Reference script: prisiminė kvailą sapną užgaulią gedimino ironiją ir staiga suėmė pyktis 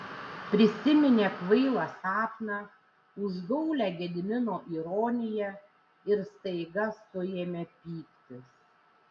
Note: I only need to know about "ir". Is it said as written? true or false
true